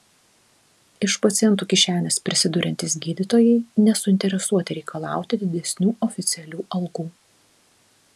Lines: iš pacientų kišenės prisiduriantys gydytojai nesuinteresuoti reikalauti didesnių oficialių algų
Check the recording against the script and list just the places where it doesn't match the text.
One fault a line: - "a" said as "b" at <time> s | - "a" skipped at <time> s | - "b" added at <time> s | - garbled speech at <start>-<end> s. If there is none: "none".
none